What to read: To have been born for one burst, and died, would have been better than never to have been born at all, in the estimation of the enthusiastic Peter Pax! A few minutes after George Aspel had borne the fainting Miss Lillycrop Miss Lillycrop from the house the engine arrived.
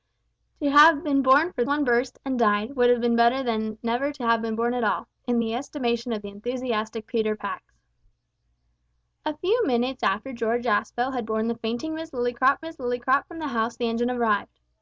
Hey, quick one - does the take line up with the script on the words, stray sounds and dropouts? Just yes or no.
yes